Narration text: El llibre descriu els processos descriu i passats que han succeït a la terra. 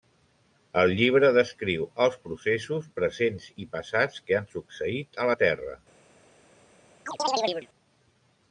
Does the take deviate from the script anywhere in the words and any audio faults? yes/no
yes